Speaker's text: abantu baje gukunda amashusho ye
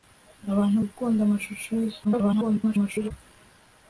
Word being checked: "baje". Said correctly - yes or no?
no